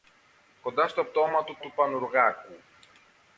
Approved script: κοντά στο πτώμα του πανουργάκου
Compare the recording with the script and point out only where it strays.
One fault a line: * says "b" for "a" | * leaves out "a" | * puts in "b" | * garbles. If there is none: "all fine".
* puts in "του"